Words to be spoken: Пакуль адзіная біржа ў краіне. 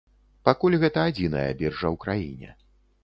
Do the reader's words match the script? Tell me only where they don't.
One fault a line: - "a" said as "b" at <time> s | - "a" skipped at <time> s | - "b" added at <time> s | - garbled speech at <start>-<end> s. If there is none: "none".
- "гэта" added at 0.8 s